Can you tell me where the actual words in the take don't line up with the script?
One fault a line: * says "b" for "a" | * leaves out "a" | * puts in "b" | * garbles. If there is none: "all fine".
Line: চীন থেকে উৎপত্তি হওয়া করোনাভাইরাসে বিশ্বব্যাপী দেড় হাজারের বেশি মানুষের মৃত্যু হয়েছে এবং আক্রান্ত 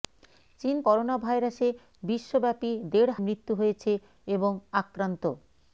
* leaves out "থেকে উৎপত্তি হওয়া"
* leaves out "হাজারের বেশি মানুষের"